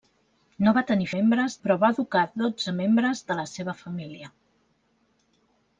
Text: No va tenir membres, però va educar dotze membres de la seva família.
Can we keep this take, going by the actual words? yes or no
yes